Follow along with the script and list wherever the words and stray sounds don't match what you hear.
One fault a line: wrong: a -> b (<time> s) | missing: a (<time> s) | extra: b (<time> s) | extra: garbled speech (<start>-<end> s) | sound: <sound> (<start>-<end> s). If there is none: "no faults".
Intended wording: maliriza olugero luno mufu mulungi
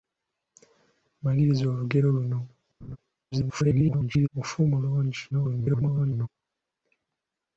sound: laugh (2.8-3.0 s)
extra: garbled speech (3.3-4.3 s)
extra: garbled speech (5.3-6.3 s)